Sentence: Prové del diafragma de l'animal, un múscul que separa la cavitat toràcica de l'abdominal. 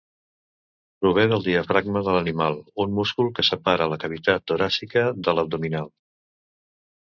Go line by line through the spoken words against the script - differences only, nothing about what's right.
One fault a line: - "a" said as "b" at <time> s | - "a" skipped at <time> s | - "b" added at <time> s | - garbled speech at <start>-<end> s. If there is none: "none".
none